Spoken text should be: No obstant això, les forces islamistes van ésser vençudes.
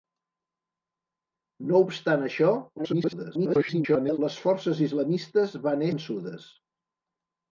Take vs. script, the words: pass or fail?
fail